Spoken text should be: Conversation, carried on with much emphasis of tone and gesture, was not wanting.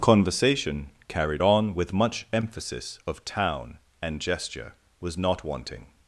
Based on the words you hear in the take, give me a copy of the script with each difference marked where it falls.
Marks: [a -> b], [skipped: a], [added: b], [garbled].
Conversation, carried on with much emphasis of [tone -> town] and gesture, was not wanting.